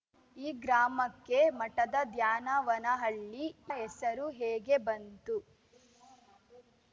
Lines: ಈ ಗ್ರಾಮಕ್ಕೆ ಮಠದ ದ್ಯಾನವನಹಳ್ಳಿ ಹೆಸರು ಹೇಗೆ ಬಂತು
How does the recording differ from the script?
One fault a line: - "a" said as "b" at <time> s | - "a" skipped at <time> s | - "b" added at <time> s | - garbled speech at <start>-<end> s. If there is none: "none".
none